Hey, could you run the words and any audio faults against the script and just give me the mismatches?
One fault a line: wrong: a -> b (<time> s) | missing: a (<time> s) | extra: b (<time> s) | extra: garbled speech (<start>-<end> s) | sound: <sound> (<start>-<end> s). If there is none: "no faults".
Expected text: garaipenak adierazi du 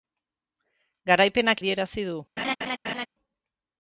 sound: laugh (2.4-3.1 s)